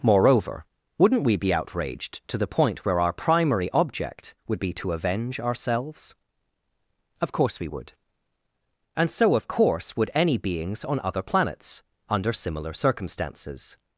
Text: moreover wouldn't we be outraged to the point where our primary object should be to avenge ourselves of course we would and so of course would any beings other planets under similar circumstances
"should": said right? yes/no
no